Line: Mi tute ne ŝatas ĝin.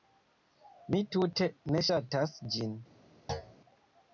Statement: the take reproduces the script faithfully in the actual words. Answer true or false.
true